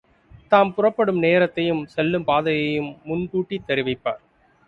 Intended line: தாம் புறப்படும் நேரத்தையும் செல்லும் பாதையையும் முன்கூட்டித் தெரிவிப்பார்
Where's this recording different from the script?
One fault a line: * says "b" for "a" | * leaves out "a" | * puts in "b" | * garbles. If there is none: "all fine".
all fine